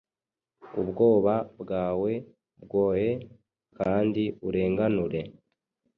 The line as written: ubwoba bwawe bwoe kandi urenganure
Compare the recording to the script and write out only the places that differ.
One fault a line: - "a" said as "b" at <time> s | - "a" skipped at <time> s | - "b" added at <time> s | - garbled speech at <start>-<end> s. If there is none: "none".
none